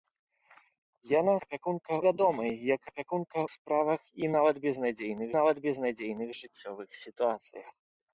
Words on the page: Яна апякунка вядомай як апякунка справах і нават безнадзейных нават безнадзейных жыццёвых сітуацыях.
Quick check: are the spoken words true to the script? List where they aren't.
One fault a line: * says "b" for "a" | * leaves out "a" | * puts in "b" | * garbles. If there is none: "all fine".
all fine